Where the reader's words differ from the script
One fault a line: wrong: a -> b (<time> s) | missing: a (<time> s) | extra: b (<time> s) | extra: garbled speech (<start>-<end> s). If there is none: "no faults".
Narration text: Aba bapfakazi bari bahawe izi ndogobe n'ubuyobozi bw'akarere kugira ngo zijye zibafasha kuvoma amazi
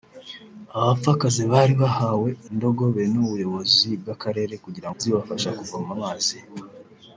missing: izi (2.3 s)
missing: ngo zijye (4.9 s)